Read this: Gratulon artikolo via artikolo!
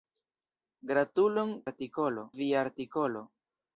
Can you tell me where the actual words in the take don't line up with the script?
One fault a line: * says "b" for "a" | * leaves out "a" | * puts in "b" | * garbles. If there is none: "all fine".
all fine